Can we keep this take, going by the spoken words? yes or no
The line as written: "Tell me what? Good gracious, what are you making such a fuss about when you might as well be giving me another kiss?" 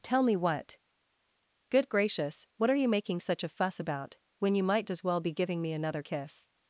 yes